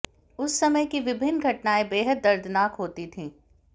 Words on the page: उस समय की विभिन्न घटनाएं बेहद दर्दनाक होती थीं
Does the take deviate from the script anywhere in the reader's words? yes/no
no